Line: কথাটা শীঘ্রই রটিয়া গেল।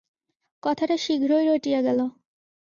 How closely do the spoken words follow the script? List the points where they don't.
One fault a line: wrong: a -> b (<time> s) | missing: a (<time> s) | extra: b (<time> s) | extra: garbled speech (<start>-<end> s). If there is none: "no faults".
no faults